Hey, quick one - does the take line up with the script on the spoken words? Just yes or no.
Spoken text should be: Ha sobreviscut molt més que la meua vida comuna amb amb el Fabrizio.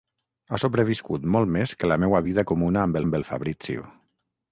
yes